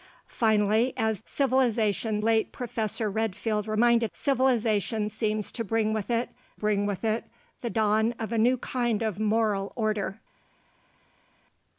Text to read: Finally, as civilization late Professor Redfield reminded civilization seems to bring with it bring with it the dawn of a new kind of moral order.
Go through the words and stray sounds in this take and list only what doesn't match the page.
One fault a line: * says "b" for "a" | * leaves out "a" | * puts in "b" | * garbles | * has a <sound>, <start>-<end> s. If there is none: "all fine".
all fine